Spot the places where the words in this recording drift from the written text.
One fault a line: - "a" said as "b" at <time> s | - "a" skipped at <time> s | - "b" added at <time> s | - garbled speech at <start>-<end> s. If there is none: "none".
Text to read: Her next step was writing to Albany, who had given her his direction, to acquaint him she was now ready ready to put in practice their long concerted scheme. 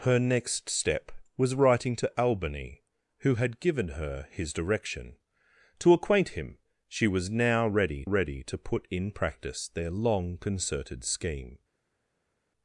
none